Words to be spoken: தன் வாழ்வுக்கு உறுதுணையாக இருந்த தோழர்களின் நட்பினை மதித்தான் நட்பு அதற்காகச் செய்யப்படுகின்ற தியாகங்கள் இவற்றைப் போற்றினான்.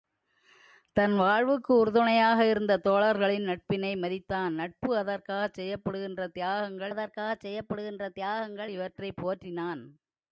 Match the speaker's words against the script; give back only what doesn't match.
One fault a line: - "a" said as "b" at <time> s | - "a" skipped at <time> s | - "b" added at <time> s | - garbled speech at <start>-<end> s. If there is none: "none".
- "அதற்காகச் செய்யப்படுகின்ற தியாகங்கள்" added at 6.9 s